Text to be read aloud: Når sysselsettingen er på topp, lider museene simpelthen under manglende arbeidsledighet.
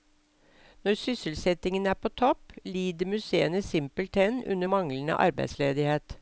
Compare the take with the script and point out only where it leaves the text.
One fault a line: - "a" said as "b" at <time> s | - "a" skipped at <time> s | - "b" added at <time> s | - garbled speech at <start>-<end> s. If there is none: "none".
none